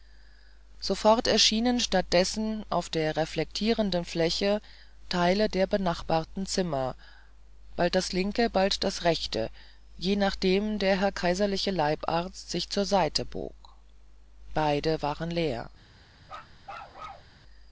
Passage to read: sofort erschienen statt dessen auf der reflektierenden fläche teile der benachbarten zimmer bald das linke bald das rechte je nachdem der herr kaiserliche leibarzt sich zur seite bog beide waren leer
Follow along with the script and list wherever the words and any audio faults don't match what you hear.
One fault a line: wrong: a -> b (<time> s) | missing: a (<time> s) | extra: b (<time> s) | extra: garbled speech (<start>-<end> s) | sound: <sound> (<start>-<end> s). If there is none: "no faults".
sound: bark (16.2-17.3 s)